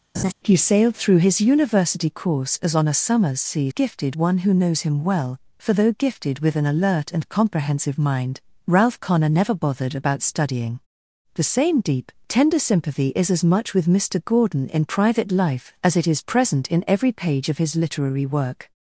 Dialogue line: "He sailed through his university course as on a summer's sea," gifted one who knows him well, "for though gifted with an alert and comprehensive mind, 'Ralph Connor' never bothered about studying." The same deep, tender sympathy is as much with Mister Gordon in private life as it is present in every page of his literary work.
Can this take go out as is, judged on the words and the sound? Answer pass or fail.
fail